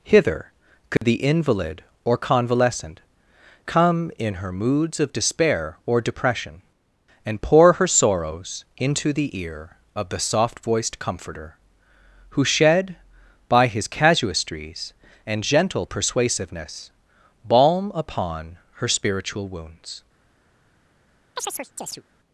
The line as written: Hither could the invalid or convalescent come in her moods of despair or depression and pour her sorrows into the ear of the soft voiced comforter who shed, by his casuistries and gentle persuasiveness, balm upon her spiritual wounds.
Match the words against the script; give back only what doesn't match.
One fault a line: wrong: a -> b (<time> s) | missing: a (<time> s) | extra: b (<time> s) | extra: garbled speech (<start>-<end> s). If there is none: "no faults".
no faults